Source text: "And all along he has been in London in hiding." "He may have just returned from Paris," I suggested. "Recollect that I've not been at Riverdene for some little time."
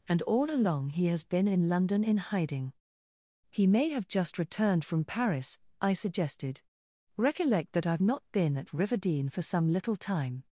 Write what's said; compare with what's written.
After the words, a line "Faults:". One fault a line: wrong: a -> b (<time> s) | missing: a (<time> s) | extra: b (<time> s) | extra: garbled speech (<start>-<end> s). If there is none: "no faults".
"And all along he has been in London in hiding." "He may have just returned from Paris," I suggested. "Recollect that I've not been at Riverdene for some little time."
Faults:
no faults